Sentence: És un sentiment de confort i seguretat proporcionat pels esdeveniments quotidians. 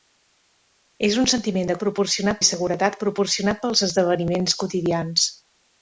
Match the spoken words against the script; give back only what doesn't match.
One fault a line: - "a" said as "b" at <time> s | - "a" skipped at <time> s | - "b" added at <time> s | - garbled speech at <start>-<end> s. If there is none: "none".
- "confort" said as "proporcionat" at 1.8 s